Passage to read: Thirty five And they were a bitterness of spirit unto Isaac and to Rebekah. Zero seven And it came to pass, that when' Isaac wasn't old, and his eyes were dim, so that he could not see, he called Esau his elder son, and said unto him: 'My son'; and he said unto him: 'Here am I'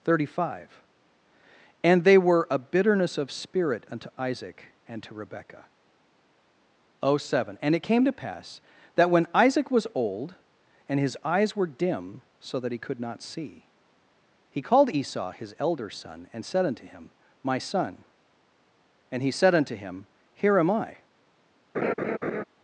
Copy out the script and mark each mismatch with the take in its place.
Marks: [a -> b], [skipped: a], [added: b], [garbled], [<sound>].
Thirty five And they were a bitterness of spirit unto Isaac and to Rebekah. Zero seven And it came to pass, that when' Isaac [wasn't -> was] old, and his eyes were dim, so that he could not see, he called Esau his elder son, and said unto him: 'My son'; and he said unto him: 'Here am I' [laugh]